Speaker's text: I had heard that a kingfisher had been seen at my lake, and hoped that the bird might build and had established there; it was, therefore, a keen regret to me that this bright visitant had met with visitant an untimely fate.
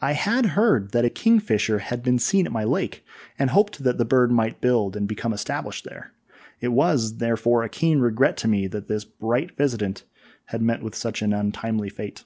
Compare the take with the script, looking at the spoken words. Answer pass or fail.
fail